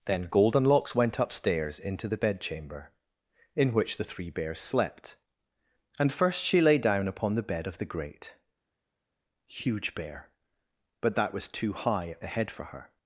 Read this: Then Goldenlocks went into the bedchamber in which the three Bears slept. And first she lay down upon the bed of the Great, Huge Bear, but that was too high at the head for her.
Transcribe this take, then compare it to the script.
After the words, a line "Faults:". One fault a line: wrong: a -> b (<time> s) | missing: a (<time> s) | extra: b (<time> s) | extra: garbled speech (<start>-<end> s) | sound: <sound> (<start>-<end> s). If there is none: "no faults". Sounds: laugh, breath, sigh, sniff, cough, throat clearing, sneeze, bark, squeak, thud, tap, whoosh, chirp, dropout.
Then Goldenlocks went upstairs into the bedchamber in which the three Bears slept. And first she lay down upon the bed of the Great, Huge Bear, but that was too high at the head for her.
Faults:
extra: upstairs (1.2 s)